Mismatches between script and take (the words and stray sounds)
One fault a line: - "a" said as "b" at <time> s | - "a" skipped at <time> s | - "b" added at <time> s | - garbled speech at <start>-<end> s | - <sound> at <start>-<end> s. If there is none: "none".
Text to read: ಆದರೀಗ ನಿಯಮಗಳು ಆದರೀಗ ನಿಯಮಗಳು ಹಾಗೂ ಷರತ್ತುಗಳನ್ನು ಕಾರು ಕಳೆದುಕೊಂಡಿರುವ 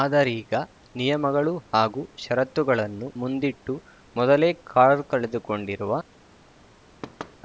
- "ಆದರೀಗ ನಿಯಮಗಳು ಹಾಗೂ ಷರತ್ತುಗಳನ್ನು" said as "ಹಾಗೂ ಷರತ್ತುಗಳನ್ನು ಮುಂದಿಟ್ಟು ಮೊದಲೇ" at 1.7 s
- thud at 7.0-7.4 s